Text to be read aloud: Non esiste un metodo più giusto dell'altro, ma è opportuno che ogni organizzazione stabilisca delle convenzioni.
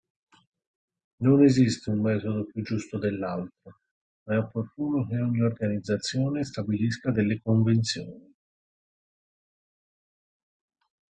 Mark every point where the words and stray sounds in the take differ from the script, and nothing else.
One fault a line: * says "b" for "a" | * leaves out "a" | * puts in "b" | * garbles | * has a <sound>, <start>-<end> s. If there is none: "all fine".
all fine